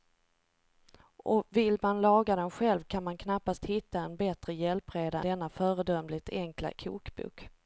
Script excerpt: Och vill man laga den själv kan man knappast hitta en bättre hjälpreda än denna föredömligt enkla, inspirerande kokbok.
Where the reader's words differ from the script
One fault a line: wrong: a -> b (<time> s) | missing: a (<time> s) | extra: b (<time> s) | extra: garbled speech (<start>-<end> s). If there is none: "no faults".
missing: än (5.2 s)
missing: inspirerande (6.7 s)